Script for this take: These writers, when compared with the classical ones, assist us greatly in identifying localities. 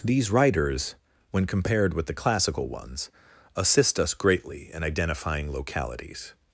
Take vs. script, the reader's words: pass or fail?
pass